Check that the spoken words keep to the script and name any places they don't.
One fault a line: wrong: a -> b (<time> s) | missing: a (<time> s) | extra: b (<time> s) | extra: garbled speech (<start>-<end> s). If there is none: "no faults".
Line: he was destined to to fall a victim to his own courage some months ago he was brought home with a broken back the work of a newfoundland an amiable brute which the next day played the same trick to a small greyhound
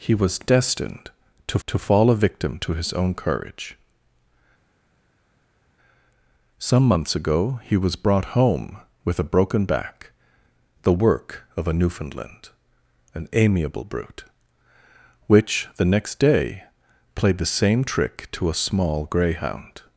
no faults